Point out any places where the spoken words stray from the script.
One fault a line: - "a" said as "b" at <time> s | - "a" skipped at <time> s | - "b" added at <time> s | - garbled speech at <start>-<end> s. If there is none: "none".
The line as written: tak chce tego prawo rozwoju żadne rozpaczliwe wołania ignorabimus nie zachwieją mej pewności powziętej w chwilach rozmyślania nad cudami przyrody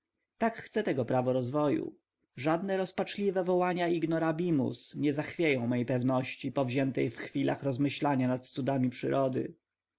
none